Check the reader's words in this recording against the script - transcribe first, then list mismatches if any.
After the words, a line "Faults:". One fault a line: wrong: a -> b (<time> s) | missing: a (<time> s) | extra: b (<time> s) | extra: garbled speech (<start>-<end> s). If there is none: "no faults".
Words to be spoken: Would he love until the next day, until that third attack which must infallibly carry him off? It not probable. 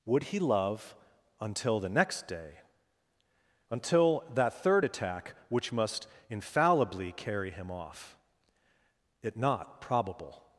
Would he love until the next day, until that third attack which must infallibly carry him off? It not probable.
Faults:
no faults